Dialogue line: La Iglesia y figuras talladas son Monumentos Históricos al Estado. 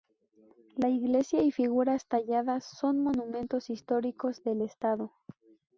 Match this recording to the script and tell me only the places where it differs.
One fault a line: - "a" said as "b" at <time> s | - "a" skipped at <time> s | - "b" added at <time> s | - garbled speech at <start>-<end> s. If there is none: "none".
- "al" said as "del" at 4.4 s